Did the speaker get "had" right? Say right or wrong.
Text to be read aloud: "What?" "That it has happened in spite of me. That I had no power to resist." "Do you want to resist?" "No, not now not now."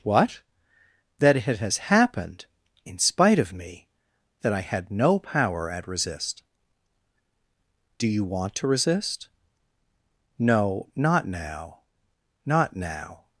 right